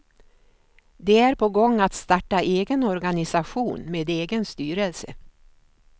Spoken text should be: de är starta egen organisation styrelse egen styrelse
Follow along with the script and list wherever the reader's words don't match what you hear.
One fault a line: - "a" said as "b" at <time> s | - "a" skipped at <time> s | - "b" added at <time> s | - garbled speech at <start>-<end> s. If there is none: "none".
- "på gång att" added at 1.4 s
- "styrelse" said as "med" at 3.9 s